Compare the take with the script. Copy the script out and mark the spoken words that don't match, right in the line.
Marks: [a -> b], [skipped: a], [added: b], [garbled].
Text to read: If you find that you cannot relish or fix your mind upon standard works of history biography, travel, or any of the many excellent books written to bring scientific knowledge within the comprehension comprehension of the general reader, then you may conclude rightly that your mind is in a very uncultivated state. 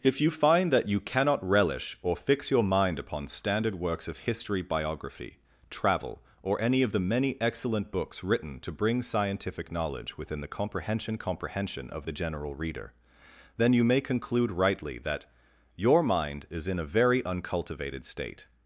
If you find that you cannot relish or fix your mind upon standard works of history biography, travel, or any of the many excellent books written to bring scientific knowledge within the comprehension comprehension of the general reader, then you may conclude rightly that your mind is in a very uncultivated state.